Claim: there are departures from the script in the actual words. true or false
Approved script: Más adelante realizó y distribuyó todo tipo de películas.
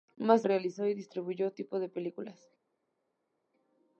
true